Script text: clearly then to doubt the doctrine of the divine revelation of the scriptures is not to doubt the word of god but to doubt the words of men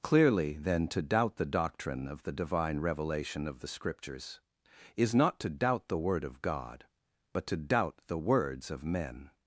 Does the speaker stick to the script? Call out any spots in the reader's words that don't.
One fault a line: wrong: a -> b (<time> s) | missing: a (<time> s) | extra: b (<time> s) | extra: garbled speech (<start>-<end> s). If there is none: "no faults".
no faults